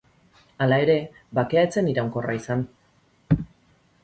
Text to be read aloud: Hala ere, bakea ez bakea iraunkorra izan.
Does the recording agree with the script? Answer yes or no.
no